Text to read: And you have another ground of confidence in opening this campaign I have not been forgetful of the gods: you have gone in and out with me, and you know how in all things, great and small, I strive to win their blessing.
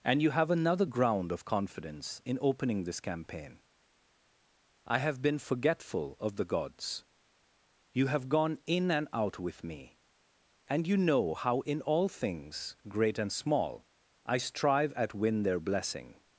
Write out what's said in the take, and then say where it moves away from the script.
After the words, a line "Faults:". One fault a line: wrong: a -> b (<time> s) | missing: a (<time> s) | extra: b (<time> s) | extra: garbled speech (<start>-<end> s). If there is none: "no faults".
And you have another ground of confidence in opening this campaign I have been forgetful of the gods: you have gone in and out with me, and you know how in all things, great and small, I strive at win their blessing.
Faults:
missing: not (5.2 s)
wrong: to -> at (14.9 s)